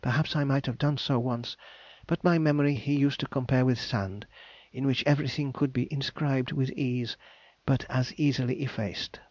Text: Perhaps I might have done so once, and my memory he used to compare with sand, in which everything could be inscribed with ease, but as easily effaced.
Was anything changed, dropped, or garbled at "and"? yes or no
yes